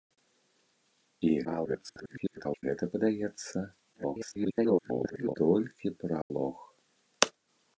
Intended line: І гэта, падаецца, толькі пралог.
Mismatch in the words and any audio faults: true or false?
true